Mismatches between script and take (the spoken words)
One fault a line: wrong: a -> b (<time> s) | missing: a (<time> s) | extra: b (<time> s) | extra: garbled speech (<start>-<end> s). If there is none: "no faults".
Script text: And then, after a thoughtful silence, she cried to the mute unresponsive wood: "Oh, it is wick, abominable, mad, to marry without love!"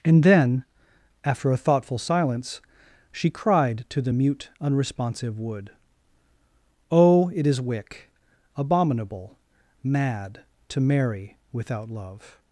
no faults